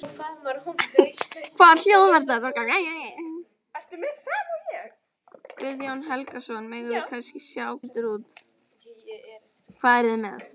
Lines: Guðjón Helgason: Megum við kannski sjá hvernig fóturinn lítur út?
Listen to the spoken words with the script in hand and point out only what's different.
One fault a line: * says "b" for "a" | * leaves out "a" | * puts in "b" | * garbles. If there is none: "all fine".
* leaves out "hvernig fóturinn"